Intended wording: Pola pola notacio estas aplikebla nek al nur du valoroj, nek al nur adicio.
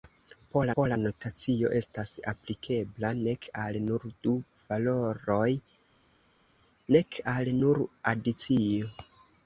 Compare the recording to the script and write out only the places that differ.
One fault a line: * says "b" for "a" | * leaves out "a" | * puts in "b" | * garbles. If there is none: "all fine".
all fine